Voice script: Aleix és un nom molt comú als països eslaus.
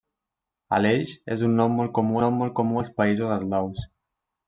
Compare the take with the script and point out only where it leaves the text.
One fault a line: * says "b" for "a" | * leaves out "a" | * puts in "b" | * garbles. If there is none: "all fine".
* puts in "nom molt comú"